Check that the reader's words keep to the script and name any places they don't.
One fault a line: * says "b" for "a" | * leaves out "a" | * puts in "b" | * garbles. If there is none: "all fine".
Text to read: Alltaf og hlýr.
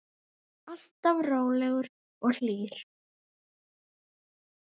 * puts in "rólegur"